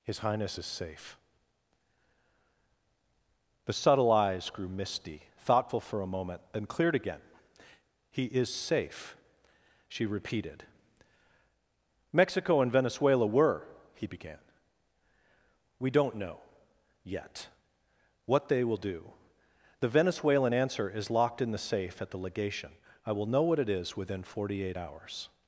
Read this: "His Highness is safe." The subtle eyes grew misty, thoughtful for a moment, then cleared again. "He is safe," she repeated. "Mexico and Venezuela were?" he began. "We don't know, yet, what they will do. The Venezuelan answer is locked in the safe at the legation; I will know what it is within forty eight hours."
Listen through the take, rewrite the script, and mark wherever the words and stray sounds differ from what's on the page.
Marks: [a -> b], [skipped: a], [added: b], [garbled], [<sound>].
"His Highness is safe." The subtle eyes grew misty, thoughtful for a moment, then cleared again. "He is safe," she repeated. "Mexico and Venezuela were?" he began. "We don't know, yet, what they will do. The Venezuelan answer is locked in the safe at the legation; I will know what it is within forty eight hours."